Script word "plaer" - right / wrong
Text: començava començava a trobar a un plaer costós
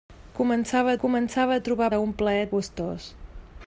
right